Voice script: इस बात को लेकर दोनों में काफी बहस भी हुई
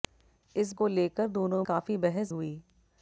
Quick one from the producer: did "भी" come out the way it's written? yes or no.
no